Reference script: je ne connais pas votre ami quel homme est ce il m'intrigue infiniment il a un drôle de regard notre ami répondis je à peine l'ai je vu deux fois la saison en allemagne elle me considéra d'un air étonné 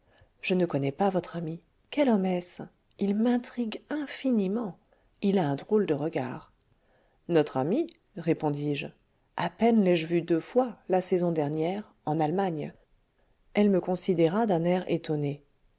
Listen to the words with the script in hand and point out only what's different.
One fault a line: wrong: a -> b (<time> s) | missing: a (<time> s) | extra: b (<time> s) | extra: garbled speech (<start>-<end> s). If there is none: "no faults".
extra: dernière (11.3 s)